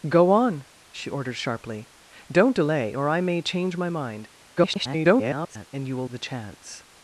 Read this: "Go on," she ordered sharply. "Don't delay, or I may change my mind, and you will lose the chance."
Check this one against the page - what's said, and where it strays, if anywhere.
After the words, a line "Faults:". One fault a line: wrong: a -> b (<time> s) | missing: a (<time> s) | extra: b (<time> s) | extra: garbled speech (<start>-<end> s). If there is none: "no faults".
"Go on," she ordered sharply. "Don't delay, or I may change my mind, [garbled] and you will the chance."
Faults:
extra: garbled speech (4.6-5.7 s)
missing: lose (6.1 s)